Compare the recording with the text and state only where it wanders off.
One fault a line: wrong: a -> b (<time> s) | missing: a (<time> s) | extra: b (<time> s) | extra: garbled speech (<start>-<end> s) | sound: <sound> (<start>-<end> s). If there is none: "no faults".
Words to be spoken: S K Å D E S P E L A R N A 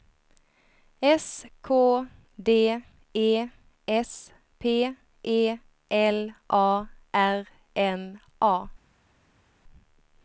missing: Å (2.1 s)